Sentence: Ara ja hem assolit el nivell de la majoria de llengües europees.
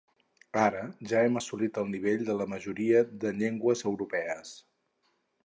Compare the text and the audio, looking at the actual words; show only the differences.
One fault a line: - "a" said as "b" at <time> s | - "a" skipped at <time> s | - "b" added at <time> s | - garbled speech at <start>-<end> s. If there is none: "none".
none